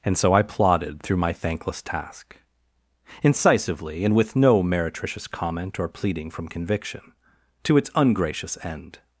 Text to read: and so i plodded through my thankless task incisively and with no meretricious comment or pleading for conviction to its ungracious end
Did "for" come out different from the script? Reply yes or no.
yes